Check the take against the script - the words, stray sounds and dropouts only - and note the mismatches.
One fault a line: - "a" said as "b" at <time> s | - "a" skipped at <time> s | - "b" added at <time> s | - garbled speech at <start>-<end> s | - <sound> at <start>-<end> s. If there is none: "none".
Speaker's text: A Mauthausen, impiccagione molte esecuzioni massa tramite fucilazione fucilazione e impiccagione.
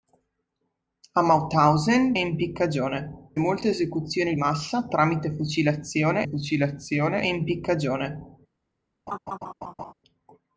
- laugh at 9.1-9.9 s